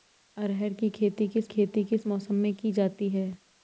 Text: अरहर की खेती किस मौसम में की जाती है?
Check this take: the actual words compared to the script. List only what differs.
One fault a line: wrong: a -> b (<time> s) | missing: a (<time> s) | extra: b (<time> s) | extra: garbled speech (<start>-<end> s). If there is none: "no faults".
extra: खेती किस (1.5 s)